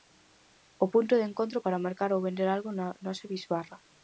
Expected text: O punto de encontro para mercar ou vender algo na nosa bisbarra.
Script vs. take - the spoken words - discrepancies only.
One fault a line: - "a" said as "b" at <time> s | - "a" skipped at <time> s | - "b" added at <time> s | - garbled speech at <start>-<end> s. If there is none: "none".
none